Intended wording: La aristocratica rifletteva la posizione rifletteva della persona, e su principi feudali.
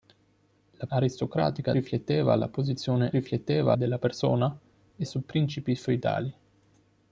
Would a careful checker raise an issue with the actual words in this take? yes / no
no